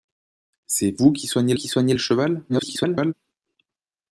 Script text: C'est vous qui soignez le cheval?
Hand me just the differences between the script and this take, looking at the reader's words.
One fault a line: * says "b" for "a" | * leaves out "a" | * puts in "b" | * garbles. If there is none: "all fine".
* puts in "qui soignez"
* garbles